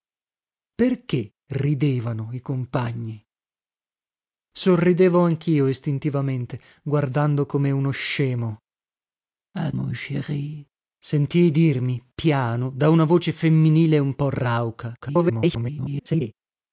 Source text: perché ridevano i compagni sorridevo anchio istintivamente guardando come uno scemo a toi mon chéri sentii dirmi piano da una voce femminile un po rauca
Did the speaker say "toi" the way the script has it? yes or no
no